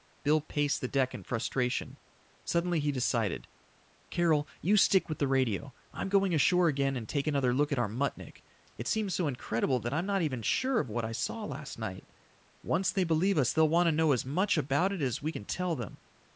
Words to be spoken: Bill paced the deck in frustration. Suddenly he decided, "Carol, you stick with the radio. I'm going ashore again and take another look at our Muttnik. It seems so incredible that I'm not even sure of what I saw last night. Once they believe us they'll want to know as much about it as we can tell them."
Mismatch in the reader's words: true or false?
false